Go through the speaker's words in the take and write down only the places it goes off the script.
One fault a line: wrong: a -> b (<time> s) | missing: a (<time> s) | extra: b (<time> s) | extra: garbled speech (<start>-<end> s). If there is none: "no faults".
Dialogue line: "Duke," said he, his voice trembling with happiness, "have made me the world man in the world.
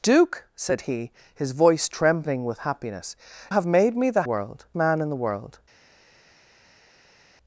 no faults